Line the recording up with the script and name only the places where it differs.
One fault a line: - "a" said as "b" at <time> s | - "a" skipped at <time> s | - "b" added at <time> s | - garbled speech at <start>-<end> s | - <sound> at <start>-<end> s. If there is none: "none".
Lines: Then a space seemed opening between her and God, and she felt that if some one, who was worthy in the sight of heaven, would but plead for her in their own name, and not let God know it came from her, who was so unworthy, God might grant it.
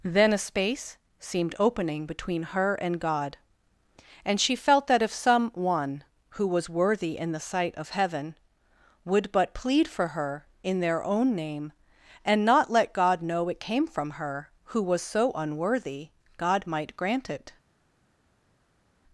none